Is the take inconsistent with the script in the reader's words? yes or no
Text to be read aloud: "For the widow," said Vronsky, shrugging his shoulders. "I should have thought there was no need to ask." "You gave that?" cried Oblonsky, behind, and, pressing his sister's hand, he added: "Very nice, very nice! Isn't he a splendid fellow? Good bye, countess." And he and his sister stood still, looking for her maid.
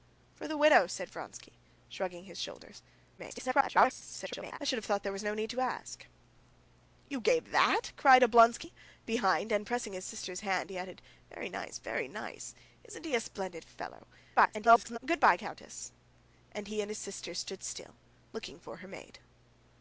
yes